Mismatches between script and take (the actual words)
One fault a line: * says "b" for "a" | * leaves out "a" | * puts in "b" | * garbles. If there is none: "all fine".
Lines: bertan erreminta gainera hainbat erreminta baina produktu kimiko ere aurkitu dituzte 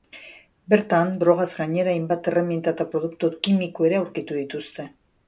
* says "drogaz" for "erreminta"
* says "eta" for "baina"